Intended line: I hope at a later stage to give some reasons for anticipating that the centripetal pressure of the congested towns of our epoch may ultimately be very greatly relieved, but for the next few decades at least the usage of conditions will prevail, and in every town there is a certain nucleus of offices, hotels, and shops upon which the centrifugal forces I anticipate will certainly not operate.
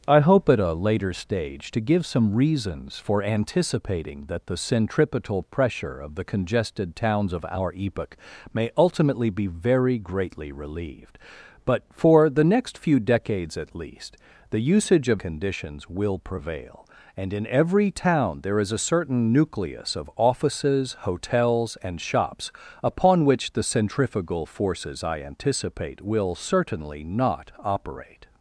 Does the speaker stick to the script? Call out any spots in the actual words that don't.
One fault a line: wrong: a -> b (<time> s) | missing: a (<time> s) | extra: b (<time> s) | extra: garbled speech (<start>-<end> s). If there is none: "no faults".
no faults